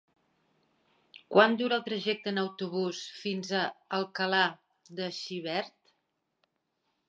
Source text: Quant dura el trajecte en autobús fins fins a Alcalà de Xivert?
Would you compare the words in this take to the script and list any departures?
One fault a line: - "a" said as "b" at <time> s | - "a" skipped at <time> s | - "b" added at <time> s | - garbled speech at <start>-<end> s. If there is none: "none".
- "fins" skipped at 3.5 s